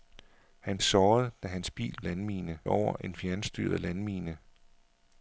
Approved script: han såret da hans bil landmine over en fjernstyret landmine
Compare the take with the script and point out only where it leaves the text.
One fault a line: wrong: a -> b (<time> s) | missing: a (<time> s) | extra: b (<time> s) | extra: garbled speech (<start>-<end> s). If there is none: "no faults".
no faults